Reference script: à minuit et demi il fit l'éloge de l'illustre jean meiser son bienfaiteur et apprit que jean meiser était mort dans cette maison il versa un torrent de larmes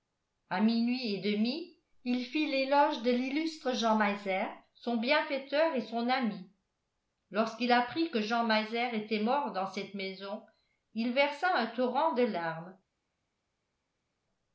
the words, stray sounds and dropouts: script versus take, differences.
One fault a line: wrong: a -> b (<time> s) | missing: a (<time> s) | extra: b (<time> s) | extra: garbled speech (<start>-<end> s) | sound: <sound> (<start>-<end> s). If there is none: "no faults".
extra: son ami lorsqu'il (5.8 s)